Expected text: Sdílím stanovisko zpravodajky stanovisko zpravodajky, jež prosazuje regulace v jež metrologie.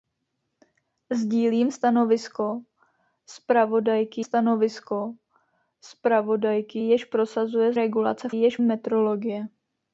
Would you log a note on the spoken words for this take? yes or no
no